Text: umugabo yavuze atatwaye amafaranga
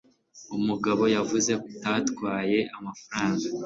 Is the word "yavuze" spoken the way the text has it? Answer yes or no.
yes